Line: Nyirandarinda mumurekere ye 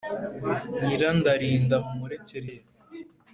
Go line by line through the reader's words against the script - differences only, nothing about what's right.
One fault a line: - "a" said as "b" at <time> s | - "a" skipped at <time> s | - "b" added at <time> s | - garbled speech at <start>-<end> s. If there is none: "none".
none